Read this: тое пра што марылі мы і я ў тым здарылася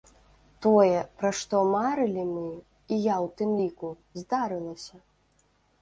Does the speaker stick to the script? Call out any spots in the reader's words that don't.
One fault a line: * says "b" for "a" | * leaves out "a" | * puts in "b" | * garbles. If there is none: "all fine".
* puts in "ліку"